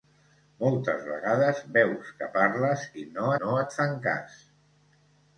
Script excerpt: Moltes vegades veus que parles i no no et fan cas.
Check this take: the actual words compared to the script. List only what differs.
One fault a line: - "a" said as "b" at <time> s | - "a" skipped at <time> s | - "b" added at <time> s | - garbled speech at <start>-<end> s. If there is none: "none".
none